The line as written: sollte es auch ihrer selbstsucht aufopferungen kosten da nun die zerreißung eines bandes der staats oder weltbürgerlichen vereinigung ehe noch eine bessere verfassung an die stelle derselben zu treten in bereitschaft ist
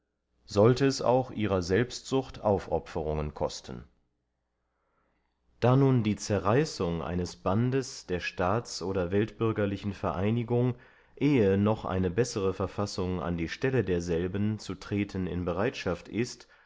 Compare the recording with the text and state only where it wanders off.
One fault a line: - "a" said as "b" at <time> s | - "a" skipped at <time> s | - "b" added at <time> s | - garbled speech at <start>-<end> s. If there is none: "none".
none